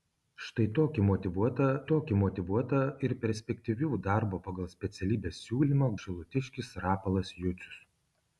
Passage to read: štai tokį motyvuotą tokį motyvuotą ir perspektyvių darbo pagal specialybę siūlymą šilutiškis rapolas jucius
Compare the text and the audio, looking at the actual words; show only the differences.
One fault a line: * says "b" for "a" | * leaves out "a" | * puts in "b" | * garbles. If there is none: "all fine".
all fine